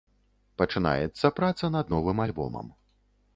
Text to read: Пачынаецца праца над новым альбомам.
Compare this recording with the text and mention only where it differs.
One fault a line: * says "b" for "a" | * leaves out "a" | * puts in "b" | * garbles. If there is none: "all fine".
all fine